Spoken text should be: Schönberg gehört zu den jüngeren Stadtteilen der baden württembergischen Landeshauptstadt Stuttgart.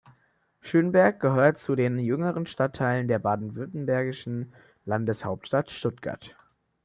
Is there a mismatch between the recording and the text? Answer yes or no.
no